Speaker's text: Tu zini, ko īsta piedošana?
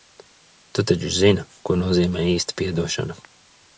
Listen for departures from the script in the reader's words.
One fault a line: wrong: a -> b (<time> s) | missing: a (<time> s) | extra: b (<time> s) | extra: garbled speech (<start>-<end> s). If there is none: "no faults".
extra: taču (0.9 s)
extra: nozīmē (1.8 s)